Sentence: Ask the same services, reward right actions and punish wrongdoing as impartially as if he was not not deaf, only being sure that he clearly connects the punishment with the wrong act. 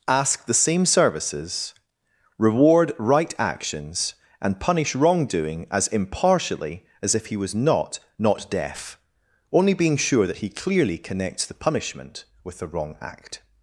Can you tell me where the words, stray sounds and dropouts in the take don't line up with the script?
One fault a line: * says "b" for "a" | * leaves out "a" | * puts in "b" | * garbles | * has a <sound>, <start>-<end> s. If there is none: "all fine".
all fine